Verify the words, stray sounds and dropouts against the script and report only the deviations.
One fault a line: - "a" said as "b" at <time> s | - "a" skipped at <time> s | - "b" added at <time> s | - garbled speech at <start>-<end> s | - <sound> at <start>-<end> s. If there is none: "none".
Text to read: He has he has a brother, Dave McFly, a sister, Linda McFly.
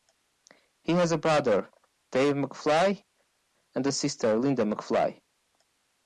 - "he has" skipped at 1.1 s
- "and" added at 3.7 s